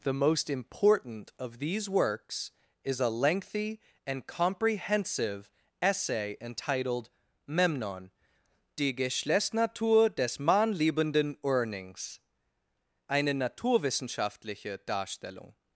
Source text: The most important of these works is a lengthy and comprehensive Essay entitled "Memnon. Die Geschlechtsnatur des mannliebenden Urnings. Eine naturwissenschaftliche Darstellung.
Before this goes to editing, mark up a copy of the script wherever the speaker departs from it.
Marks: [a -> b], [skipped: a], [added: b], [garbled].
The most important of these works is a lengthy and comprehensive Essay entitled "Memnon. Die Geschlechtsnatur des mannliebenden Urnings. Eine naturwissenschaftliche Darstellung.